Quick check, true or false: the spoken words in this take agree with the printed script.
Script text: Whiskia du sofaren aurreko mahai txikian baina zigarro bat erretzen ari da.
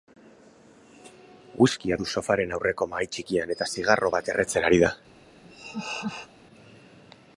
false